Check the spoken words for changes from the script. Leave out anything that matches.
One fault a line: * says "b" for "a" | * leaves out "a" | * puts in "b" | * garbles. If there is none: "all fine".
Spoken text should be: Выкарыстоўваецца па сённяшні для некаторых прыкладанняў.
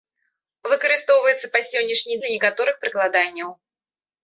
all fine